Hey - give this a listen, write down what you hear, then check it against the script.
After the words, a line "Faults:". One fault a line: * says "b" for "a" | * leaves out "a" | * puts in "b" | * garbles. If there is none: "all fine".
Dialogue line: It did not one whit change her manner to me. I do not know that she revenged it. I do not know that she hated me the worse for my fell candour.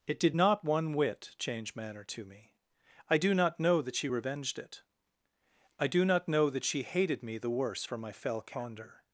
It did not one whit change manner to me. I do not know that she revenged it. I do not know that she hated me the worse for my fell candour.
Faults:
* leaves out "her"